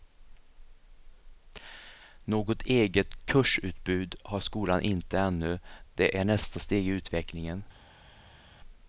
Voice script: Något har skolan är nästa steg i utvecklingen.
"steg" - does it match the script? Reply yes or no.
yes